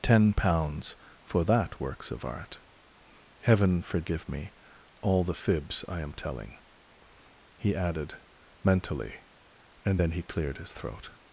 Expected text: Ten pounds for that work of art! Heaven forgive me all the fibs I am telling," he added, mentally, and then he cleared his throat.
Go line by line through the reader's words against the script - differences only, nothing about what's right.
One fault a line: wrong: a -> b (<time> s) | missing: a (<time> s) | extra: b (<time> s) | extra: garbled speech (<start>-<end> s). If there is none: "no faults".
wrong: work -> works (1.8 s)